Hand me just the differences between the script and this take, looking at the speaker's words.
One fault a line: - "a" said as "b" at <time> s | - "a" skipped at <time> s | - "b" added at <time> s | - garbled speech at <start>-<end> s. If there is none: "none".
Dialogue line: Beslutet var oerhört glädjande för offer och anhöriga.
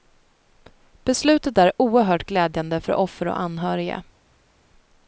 - "var" said as "är" at 1.6 s